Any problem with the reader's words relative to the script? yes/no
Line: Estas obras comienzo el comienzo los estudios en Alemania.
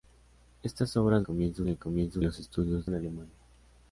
no